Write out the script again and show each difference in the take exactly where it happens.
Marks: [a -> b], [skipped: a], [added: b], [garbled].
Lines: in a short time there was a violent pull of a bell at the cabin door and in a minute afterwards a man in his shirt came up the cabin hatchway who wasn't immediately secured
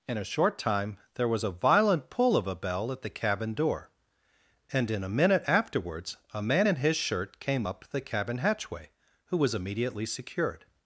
in a short time there was a violent pull of a bell at the cabin door and in a minute afterwards a man in his shirt came up the cabin hatchway who [wasn't -> was] immediately secured